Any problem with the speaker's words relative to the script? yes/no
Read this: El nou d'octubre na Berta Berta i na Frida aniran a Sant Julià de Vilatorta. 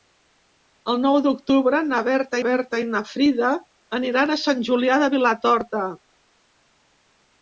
no